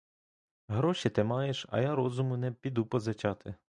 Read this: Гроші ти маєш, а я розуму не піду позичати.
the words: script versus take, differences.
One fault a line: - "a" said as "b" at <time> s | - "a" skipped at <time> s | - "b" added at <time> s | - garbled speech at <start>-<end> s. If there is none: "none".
none